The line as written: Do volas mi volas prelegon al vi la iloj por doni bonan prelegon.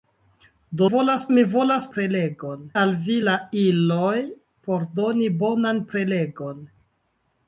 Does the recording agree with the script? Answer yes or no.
yes